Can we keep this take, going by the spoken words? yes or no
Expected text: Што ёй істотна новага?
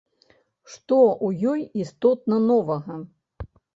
no